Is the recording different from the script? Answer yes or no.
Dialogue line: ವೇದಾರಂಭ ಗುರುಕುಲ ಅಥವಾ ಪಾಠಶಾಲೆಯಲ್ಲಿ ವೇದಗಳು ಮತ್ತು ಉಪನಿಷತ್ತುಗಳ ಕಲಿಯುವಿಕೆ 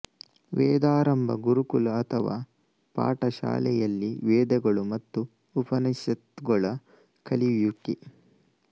no